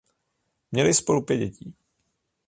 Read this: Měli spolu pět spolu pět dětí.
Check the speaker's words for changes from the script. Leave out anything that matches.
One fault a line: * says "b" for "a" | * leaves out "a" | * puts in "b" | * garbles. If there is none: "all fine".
* leaves out "spolu pět"